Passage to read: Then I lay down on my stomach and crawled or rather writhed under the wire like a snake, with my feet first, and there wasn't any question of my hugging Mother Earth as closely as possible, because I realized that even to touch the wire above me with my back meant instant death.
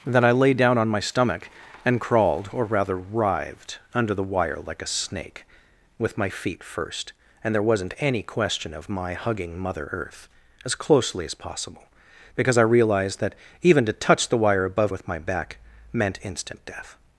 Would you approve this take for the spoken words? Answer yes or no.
no